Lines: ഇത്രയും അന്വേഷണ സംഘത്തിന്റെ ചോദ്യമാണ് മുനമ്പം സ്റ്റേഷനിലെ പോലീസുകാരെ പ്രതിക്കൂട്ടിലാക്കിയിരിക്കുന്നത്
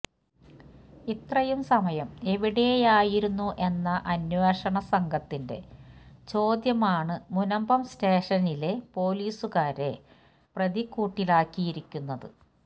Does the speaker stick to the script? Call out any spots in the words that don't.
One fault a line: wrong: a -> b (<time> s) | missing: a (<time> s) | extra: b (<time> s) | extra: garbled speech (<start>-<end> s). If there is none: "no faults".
extra: സമയം എവിടെയായിരുന്നു എന്ന (1.6 s)